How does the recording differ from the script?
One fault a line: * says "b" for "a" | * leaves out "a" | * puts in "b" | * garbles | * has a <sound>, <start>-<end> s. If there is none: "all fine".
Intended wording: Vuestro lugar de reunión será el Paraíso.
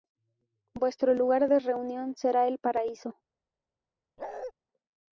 * has a bark, 4.2-4.5 s